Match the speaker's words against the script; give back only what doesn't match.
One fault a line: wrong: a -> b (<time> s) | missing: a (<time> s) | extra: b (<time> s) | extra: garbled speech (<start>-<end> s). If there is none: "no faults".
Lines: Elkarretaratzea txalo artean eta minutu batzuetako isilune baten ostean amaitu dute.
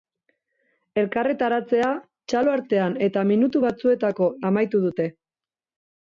missing: isilune baten ostean (4.3 s)